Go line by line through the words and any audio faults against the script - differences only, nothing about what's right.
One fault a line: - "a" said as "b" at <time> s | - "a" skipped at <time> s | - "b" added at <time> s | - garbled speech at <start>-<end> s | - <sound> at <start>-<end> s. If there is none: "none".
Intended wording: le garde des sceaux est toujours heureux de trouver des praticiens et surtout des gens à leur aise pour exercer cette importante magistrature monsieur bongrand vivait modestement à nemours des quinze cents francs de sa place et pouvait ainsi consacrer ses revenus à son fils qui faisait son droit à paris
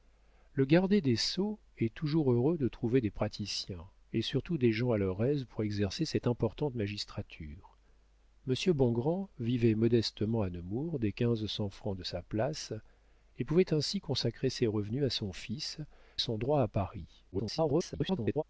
- "qui faisait" skipped at 15.8 s
- garbled speech at 17.3-18.4 s